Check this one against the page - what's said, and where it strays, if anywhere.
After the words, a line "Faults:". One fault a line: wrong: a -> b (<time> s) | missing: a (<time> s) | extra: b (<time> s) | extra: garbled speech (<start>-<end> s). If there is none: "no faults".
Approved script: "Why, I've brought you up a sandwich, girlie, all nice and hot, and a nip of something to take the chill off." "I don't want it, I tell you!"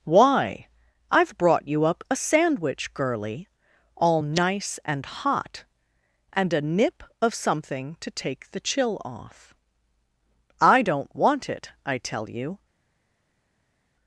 "Why, I've brought you up a sandwich, girlie, all nice and hot, and a nip of something to take the chill off." "I don't want it, I tell you!"
Faults:
no faults